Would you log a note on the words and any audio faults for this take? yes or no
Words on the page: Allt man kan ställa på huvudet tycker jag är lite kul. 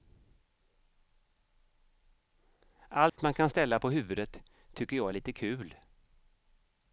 yes